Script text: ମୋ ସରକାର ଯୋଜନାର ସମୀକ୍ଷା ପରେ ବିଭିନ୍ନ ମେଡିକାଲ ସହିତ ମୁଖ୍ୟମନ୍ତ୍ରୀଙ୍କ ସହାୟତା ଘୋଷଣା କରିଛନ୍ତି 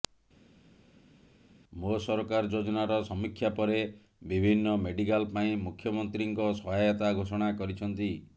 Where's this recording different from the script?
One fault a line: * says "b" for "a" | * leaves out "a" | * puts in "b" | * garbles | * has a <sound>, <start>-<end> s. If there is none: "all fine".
* says "ପାଇଁ" for "ସହିତ"